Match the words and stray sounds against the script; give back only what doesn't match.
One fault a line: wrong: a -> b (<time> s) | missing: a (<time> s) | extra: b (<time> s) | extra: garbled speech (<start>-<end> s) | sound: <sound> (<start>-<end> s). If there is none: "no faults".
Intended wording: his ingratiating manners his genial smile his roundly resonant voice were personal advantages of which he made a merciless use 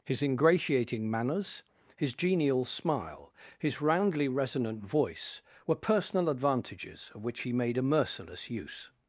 no faults